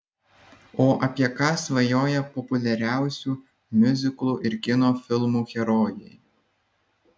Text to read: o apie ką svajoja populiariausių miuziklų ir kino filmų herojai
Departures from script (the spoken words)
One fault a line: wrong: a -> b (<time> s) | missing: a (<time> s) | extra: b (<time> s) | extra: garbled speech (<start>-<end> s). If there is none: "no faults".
no faults